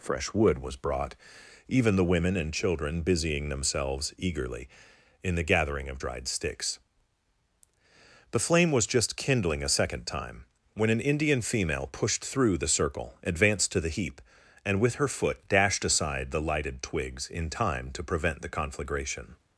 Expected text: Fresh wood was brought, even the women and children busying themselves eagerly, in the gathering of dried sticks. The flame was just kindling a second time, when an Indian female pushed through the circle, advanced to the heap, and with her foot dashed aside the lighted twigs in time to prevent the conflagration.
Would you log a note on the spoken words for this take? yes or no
no